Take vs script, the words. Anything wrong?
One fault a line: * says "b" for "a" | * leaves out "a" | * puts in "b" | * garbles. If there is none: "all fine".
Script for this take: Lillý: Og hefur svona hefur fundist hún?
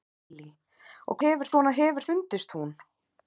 all fine